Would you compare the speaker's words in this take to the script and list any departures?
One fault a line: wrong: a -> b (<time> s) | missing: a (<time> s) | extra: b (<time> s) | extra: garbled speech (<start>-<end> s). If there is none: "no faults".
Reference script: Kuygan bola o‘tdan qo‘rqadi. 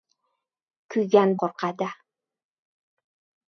missing: bola o‘tdan (1.4 s)